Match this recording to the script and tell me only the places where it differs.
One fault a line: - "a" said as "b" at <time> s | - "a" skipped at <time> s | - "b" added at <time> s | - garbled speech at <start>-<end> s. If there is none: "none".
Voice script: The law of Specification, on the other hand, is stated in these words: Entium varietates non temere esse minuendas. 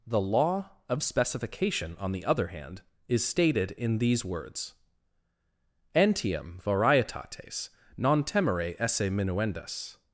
none